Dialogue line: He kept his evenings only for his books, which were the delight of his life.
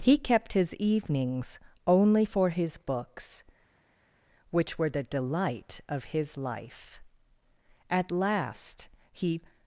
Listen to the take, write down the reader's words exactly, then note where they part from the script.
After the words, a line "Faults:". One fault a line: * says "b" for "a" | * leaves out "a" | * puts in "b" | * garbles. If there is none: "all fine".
He kept his evenings only for his books, which were the delight of his life. At last he
Faults:
* puts in "At last he"